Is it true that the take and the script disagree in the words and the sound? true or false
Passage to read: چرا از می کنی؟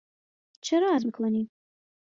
false